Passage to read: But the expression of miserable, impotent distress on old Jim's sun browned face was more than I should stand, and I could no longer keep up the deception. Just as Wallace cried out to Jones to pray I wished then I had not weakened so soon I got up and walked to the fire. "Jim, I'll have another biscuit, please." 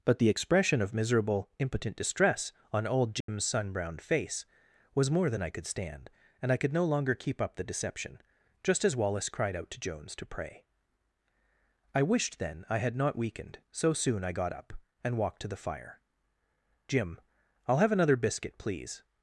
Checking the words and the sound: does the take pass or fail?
fail